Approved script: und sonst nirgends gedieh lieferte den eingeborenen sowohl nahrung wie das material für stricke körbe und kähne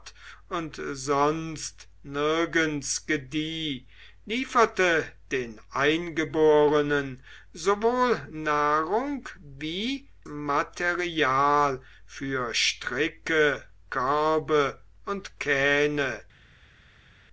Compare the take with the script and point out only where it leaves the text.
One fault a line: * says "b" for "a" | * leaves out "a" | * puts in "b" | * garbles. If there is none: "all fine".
* leaves out "das"